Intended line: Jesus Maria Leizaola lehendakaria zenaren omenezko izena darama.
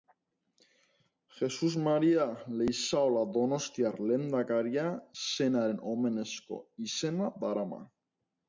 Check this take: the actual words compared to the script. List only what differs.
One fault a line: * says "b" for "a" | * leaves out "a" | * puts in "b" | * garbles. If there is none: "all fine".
* puts in "donostiar"